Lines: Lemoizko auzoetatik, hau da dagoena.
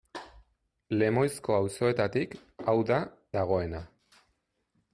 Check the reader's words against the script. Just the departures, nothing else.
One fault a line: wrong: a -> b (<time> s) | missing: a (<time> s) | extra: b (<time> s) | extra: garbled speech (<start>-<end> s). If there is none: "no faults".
no faults